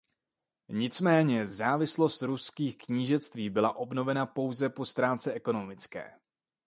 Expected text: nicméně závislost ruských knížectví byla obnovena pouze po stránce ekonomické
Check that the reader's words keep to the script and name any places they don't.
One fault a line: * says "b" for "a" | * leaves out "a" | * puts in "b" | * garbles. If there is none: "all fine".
all fine